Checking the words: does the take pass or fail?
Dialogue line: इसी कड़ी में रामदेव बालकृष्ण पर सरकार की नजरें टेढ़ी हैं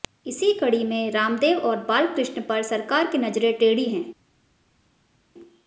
fail